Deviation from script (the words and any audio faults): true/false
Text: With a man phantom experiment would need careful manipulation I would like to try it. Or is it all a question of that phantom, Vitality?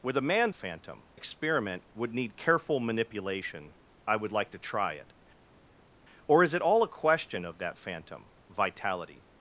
false